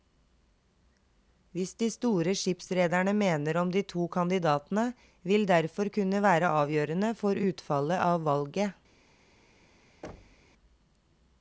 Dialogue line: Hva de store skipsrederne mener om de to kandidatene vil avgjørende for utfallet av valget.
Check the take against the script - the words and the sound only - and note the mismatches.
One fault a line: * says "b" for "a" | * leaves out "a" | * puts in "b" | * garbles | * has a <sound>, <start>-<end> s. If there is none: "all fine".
* puts in "derfor kunne være"
* has a thud, 10.0-10.5 s